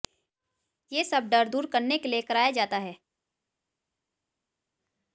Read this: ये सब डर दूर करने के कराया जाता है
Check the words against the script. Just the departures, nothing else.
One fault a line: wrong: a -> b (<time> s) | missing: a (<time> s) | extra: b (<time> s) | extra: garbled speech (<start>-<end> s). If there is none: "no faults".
extra: लिए (2.1 s)